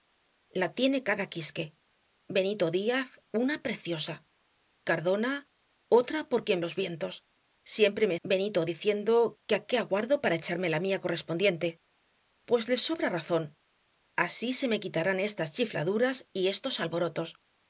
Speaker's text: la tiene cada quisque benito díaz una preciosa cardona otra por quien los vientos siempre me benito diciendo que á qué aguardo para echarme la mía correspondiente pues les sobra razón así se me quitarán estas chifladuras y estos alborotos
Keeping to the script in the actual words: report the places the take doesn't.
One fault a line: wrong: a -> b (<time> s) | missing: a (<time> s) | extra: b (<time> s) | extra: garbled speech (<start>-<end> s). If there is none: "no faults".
no faults